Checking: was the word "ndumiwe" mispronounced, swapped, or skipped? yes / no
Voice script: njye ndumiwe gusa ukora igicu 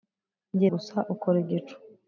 yes